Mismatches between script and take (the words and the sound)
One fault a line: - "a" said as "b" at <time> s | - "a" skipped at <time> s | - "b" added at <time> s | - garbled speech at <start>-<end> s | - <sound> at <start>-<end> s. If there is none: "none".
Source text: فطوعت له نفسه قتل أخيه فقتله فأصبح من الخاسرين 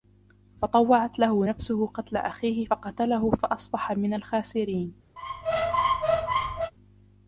- squeak at 5.2-6.7 s